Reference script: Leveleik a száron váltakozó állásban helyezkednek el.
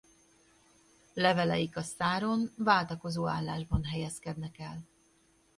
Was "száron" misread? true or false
false